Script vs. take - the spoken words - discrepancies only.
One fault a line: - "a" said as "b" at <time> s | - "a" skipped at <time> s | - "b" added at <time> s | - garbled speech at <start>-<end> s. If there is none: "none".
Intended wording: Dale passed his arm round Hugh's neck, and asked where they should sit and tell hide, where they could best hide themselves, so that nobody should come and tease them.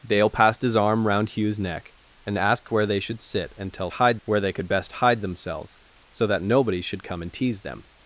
none